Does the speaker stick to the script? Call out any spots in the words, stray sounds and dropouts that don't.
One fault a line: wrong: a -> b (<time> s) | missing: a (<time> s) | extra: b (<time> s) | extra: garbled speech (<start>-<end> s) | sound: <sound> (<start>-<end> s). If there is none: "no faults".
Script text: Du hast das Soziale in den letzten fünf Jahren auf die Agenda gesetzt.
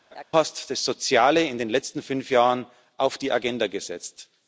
sound: laugh (0.1-0.2 s)